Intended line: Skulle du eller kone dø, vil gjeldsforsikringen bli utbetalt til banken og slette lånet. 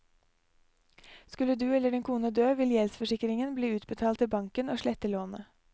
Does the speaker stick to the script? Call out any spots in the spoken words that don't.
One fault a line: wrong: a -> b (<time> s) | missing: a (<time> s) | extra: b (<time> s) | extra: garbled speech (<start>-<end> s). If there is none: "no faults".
extra: din (1.9 s)